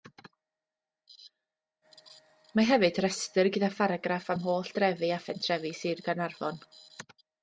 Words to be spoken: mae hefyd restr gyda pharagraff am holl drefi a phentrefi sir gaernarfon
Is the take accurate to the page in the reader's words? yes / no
yes